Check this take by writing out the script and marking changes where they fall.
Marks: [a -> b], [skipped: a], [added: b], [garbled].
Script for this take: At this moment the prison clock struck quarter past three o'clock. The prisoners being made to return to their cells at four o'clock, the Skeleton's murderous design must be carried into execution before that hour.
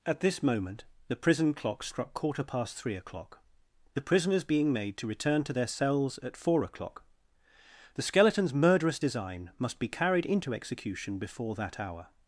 At this moment the prison clock struck quarter past three o'clock. The prisoners being made to return to their cells at four o'clock, the Skeleton's murderous design must be carried into execution before that hour.